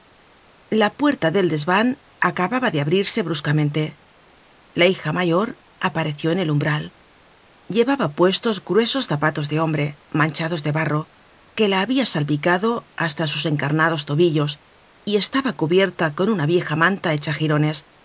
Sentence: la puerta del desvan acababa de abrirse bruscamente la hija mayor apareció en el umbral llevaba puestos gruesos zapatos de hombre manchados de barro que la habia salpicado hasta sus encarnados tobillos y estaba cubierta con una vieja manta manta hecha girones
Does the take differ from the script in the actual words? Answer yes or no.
yes